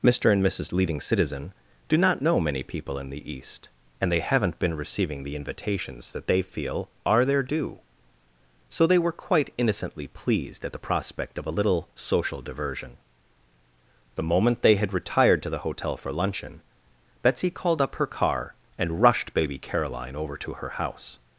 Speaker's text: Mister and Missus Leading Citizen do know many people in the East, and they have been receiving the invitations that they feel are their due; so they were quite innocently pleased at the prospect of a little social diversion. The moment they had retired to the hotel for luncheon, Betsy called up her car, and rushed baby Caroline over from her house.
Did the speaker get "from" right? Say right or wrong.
wrong